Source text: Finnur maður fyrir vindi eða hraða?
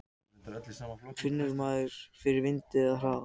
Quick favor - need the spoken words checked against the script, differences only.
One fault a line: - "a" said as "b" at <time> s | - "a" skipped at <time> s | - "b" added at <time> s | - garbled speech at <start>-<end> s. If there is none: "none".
none